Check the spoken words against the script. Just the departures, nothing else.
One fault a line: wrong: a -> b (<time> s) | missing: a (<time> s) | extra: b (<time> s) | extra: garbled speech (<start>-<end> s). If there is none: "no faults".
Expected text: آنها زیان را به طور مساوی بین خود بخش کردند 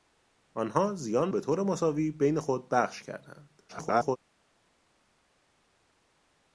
missing: را (1.3 s)
extra: garbled speech (3.7-4.2 s)